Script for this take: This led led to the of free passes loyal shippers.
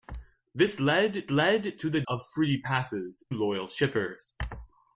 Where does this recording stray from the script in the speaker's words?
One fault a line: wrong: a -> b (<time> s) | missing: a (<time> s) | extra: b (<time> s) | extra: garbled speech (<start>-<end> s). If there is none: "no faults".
no faults